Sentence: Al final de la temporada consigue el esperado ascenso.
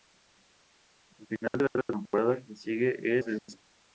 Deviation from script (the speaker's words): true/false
true